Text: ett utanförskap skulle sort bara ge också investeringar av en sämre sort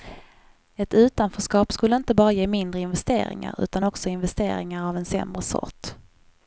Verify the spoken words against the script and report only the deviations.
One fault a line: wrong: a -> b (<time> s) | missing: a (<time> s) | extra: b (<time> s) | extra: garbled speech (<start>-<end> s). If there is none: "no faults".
wrong: sort -> inte (1.9 s)
extra: mindre investeringar utan (2.5 s)